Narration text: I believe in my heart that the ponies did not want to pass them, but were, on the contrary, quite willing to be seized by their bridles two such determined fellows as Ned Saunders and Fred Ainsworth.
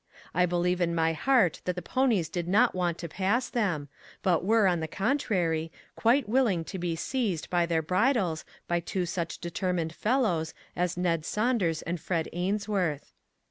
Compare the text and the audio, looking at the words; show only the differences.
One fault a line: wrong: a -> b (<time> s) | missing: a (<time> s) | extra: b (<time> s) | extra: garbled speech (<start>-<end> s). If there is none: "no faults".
extra: by (8.7 s)